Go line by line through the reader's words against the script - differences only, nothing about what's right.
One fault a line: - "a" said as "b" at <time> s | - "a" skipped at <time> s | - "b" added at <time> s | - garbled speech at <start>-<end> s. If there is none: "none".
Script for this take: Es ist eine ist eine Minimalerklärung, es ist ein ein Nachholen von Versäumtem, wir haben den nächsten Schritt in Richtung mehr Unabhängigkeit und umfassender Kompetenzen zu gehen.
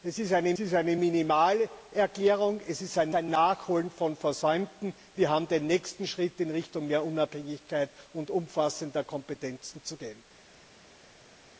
none